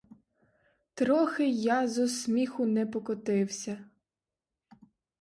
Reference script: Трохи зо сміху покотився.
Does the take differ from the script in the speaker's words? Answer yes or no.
yes